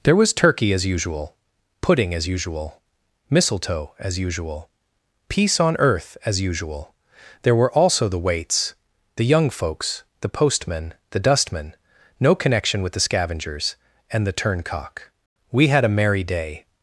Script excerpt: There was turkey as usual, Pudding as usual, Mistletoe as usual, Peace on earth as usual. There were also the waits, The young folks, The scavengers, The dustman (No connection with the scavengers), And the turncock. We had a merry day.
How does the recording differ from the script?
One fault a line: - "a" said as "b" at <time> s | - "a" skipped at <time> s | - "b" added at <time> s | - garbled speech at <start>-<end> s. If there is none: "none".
- "scavengers" said as "postman" at 10.3 s